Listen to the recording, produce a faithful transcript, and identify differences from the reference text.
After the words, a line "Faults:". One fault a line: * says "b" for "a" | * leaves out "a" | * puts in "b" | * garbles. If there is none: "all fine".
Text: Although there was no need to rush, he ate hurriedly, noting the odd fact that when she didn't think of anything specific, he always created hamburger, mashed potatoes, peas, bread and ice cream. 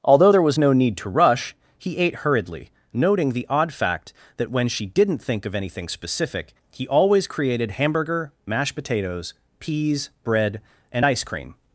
Although there was no need to rush, he ate hurriedly, noting the odd fact that when she didn't think of anything specific, he always created hamburger, mashed potatoes, peas, bread and ice cream.
Faults:
all fine